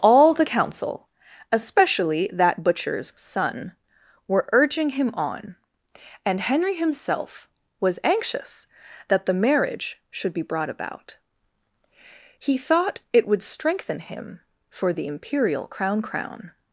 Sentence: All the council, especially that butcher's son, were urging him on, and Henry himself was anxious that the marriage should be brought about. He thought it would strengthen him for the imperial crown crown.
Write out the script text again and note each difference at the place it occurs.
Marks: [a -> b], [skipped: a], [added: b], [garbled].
All the council, especially that butcher's son, were urging him on, and Henry himself was anxious that the marriage should be brought about. He thought it would strengthen him for the imperial crown crown.